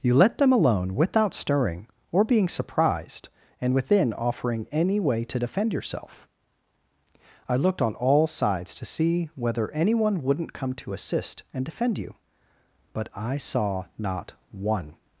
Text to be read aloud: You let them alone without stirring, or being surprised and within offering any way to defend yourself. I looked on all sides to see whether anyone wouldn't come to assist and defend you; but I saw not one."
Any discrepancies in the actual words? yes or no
no